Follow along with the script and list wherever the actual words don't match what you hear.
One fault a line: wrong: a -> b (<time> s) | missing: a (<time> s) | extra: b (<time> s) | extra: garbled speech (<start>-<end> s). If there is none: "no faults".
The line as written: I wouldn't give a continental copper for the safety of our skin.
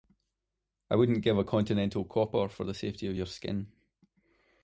wrong: our -> your (3.1 s)